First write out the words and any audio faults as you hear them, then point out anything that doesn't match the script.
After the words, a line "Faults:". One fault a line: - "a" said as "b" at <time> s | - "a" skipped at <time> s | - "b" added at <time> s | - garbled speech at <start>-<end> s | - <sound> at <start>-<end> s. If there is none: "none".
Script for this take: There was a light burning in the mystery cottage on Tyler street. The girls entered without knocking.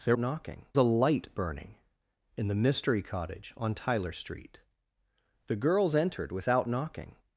There knocking a light burning in the mystery cottage on Tyler street. The girls entered without knocking.
Faults:
- "was" said as "knocking" at 0.2 s